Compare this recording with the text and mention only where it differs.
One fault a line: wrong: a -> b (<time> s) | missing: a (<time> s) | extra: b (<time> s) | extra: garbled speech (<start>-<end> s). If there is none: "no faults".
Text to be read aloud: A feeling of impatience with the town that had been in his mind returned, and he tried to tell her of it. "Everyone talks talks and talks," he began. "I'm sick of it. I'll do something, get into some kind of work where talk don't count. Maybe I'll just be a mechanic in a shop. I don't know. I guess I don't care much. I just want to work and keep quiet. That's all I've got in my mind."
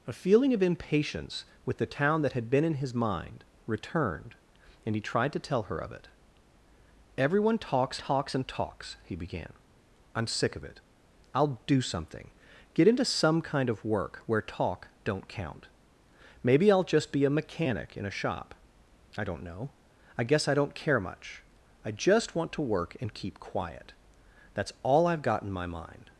no faults